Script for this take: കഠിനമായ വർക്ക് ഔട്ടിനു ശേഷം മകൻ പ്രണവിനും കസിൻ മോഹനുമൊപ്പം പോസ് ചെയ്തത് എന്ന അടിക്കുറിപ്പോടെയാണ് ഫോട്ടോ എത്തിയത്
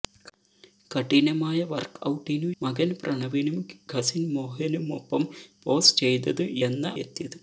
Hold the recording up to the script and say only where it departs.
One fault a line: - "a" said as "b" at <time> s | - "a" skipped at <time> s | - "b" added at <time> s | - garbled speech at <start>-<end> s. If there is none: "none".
- "ശേഷം" skipped at 2.5 s
- "അടിക്കുറിപ്പോടെയാണ് ഫോട്ടോ" skipped at 6.9 s